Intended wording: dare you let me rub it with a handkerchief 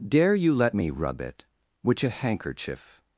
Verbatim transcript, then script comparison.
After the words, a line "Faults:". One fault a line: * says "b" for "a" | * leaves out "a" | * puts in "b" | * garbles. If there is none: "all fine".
dare you let me rub it which a handkerchief
Faults:
* says "which" for "with"